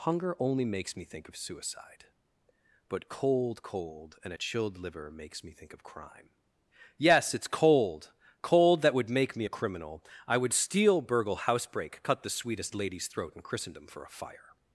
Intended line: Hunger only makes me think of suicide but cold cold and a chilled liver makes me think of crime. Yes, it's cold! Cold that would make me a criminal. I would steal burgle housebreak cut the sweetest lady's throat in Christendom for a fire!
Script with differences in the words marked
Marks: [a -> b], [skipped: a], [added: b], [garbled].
Hunger only makes me think of suicide but cold cold and a chilled liver makes me think of crime. Yes, it's cold! Cold that would make me a criminal. I would steal burgle housebreak cut the sweetest lady's throat in Christendom for a fire!